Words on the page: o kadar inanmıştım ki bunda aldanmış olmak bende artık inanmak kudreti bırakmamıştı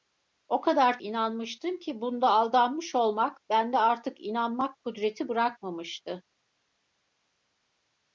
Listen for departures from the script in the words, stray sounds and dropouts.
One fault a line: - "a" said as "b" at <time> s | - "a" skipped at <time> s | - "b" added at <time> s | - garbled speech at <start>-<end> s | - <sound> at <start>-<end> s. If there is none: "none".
none